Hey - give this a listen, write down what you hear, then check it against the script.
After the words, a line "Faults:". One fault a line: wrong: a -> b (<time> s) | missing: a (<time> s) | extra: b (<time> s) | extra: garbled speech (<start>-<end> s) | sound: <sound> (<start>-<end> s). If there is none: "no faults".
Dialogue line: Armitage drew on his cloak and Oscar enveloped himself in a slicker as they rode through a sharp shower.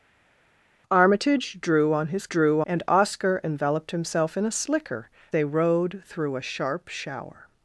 Armitage drew on his drew and Oscar enveloped himself in a slicker they rode through a sharp shower.
Faults:
wrong: cloak -> drew (2.3 s)
missing: as (5.1 s)